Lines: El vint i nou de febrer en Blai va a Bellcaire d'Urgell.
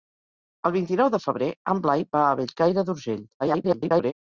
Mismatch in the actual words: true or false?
true